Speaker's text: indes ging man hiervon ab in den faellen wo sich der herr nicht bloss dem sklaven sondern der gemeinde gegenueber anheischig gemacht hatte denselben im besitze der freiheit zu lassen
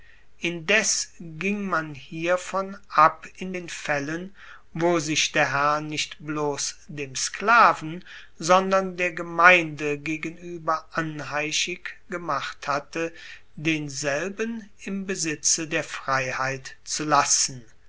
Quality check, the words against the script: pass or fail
pass